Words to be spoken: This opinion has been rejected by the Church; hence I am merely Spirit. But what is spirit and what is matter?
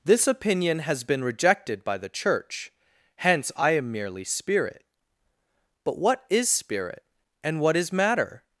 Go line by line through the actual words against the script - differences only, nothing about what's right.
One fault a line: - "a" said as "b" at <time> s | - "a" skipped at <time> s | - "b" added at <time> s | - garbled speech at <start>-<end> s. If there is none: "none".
none